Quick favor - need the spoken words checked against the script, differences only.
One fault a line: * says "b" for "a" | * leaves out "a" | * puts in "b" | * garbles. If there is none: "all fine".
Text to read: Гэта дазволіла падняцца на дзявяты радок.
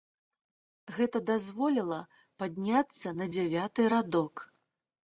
all fine